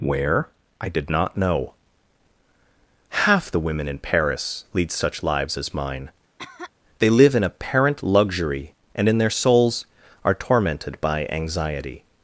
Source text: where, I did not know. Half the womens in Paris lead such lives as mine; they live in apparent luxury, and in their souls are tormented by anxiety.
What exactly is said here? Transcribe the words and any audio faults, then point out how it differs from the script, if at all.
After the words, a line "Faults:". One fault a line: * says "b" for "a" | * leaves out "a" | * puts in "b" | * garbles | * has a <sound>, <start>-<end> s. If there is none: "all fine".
where, I did not know. Half the women in Paris lead such lives as mine; they live in apparent luxury, and in their souls are tormented by anxiety.
Faults:
* says "women" for "womens"
* has a cough, 6.4-6.7 s